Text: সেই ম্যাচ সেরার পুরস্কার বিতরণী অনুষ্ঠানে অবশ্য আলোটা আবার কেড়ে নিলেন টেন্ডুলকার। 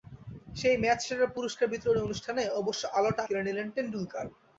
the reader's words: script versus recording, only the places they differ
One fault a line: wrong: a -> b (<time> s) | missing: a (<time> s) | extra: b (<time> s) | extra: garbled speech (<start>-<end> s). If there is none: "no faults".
missing: আবার (3.2 s)